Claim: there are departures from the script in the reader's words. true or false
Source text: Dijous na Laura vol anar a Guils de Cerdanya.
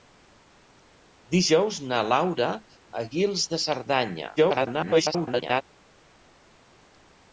true